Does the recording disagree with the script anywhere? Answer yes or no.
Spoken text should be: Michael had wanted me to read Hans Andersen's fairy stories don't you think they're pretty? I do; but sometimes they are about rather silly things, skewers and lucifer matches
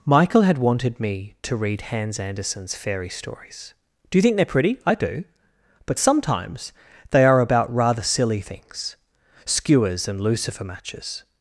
yes